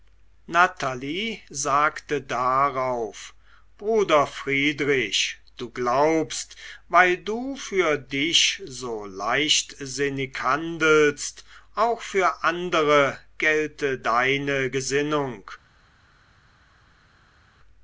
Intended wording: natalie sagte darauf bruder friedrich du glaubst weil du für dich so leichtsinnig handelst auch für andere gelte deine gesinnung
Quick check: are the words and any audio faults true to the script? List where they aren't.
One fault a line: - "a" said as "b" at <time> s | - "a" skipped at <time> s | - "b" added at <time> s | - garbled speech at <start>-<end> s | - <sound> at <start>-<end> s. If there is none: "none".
none